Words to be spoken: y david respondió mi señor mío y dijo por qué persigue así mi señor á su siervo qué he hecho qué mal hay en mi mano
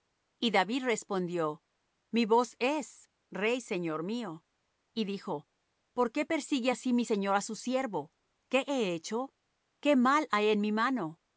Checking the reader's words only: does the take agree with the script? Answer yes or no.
no